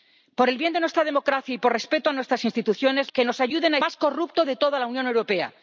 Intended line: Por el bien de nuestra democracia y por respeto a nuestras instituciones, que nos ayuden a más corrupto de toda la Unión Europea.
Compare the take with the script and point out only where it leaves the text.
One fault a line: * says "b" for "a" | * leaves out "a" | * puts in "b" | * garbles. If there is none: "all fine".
all fine